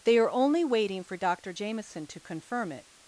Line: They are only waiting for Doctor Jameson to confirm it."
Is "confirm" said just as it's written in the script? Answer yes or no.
yes